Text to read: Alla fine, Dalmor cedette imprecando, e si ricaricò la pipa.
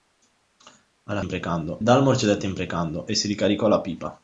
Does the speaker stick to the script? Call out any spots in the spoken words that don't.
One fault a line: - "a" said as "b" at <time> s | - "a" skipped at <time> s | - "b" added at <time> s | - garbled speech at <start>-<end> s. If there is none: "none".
- "fine" said as "imprecando" at 1.2 s